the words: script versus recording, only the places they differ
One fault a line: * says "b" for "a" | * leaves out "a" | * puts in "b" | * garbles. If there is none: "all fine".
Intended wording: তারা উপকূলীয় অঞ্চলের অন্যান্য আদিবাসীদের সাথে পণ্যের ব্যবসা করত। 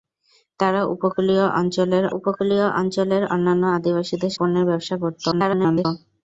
* puts in "উপকূলীয় অঞ্চলের"
* leaves out "সাথে"
* garbles